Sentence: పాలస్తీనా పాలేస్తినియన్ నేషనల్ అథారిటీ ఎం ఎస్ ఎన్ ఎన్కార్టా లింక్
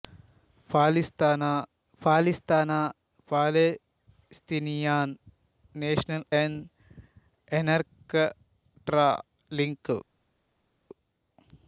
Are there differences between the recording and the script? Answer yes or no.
yes